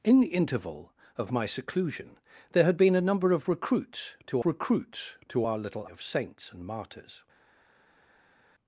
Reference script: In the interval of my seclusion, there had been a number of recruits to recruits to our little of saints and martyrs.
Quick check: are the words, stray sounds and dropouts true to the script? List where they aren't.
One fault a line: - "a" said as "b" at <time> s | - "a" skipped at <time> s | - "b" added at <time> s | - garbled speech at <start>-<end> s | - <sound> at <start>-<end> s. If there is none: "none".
none